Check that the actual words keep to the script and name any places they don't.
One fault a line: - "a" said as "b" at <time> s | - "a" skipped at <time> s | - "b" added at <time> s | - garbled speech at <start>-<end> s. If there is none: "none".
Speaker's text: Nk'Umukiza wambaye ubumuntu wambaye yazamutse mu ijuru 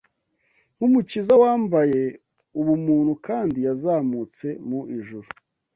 - "wambaye" said as "kandi" at 3.3 s